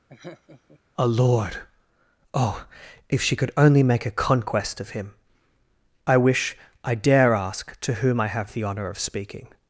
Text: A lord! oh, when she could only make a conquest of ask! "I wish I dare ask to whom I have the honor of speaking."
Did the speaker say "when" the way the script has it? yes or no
no